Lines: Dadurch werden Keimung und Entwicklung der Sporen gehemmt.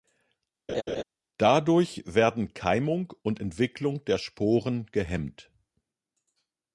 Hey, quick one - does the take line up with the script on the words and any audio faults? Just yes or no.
no